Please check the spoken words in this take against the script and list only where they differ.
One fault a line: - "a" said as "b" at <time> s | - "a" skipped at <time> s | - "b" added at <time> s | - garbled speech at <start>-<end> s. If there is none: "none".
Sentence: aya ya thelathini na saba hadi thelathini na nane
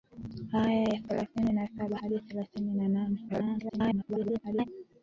- garbled speech at 3.3-4.7 s